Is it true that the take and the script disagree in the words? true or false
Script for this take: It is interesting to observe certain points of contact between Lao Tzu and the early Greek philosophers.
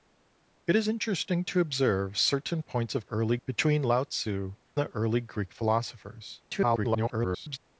true